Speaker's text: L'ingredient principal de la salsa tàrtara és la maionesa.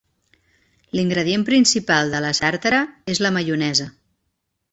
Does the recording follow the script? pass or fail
fail